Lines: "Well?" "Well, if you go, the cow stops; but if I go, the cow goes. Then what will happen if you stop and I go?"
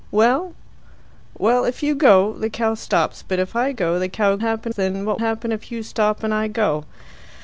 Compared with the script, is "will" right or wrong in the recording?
wrong